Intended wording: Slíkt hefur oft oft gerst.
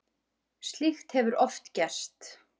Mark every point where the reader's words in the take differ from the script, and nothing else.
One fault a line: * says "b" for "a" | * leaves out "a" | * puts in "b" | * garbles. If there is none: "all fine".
* leaves out "oft"